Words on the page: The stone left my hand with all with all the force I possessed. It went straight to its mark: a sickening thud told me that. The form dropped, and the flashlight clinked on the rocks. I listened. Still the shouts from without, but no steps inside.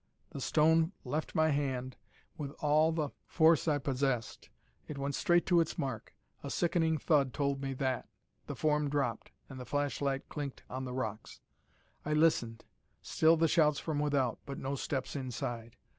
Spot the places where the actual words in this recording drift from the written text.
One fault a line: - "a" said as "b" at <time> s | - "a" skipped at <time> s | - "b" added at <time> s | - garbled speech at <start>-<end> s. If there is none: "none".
- "with all" skipped at 2.9 s